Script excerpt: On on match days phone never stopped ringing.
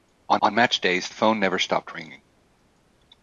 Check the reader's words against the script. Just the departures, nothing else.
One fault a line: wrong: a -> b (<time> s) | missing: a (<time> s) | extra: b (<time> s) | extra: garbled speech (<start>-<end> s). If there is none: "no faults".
no faults